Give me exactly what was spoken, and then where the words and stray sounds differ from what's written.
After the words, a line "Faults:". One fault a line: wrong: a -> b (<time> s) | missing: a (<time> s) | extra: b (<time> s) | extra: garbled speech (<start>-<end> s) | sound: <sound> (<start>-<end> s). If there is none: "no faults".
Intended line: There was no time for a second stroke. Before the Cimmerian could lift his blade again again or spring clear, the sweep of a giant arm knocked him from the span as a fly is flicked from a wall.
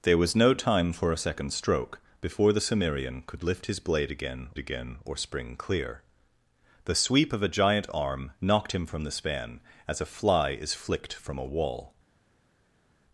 There was no time for a second stroke. Before the Cimmerian could lift his blade again again or spring clear, the sweep of a giant arm knocked him from the span as a fly is flicked from a wall.
Faults:
no faults